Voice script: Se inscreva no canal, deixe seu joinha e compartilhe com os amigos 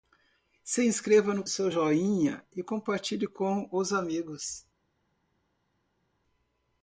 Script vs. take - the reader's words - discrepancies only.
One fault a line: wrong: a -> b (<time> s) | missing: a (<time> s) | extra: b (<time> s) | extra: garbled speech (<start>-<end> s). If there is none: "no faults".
missing: canal deixe (1.4 s)